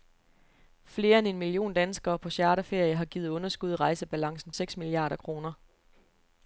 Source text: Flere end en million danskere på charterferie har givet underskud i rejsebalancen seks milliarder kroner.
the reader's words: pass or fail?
pass